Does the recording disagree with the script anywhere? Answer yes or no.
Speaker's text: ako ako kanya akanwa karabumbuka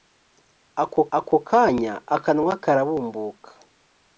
no